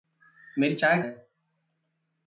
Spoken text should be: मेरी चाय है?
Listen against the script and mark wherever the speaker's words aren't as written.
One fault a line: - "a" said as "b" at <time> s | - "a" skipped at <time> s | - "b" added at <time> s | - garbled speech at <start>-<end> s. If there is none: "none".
none